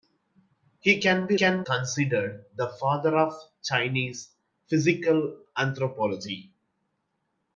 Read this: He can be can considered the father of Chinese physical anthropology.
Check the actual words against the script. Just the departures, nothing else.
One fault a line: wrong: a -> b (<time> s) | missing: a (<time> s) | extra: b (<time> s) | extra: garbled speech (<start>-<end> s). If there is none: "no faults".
no faults